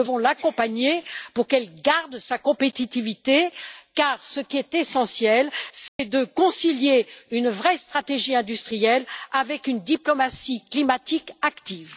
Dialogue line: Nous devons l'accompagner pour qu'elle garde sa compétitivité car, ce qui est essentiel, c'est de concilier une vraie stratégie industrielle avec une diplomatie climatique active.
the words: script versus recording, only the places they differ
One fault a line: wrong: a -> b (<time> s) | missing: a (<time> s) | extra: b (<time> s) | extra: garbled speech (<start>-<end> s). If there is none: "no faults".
no faults